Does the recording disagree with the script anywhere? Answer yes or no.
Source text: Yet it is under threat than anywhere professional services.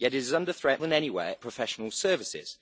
no